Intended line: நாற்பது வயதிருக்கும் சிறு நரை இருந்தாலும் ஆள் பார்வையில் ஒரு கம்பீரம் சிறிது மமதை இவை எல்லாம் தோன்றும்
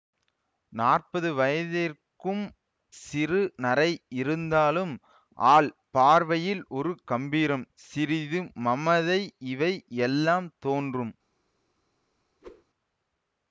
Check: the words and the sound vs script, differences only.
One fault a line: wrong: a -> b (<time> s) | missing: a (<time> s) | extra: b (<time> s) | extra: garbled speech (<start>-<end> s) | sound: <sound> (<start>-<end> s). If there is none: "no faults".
sound: whoosh (12.4-12.6 s)